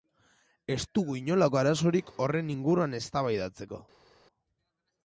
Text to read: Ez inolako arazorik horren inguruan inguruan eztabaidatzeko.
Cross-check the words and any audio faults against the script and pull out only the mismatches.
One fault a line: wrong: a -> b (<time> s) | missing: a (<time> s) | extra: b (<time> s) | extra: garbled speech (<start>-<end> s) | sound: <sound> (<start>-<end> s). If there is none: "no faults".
extra: dugu (1.0 s)
missing: inguruan (3.0 s)